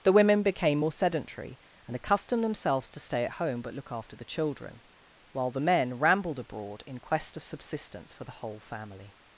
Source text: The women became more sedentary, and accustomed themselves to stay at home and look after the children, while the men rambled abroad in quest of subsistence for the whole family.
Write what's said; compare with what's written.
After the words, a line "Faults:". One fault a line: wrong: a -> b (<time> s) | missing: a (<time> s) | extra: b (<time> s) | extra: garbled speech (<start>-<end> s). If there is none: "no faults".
The women became more sedentary, and accustomed themselves to stay at home but look after the children, while the men rambled abroad in quest of subsistence for the whole family.
Faults:
wrong: and -> but (3.6 s)